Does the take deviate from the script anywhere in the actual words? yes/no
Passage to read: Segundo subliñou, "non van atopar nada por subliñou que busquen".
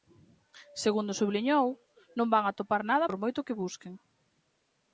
yes